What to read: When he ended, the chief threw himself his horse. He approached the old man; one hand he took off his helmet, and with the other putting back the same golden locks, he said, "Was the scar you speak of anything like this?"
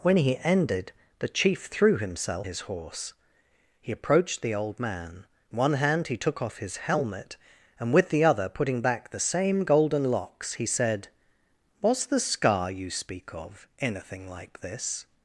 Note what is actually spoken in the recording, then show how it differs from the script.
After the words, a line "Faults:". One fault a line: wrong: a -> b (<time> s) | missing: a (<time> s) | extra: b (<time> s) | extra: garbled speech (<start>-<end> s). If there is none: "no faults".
When he ended, the chief threw himself his horse. He approached the old man; one hand he took off his helmet, and with the other putting back the same golden locks, he said, "Was the scar you speak of anything like this?"
Faults:
no faults